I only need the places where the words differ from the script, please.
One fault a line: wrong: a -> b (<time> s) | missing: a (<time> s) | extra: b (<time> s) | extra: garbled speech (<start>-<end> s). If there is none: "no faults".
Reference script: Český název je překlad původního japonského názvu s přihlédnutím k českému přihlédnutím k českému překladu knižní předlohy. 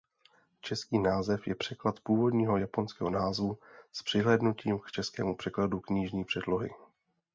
missing: přihlédnutím k českému (5.3 s)